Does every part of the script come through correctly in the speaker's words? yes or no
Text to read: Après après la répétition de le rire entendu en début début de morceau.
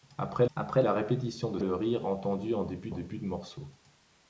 yes